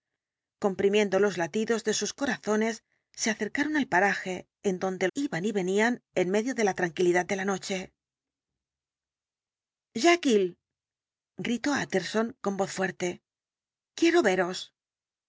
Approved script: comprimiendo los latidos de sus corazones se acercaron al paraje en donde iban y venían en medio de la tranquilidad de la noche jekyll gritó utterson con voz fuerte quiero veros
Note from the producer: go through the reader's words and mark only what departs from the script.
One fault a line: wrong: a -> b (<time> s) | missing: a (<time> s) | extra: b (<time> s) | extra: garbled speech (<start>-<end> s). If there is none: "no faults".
no faults